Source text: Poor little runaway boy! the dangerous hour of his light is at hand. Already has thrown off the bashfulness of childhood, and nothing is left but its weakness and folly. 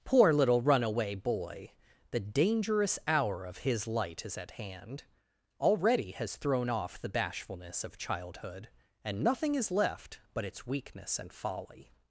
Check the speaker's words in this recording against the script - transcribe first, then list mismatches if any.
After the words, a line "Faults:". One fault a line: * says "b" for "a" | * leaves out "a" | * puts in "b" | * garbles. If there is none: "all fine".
Poor little runaway boy! the dangerous hour of his light is at hand. Already has thrown off the bashfulness of childhood, and nothing is left but its weakness and folly.
Faults:
all fine